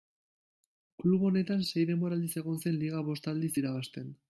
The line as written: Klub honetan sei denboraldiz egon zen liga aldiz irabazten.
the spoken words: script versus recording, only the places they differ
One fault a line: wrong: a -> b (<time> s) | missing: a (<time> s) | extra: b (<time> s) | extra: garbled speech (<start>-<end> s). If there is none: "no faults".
extra: bost (3.1 s)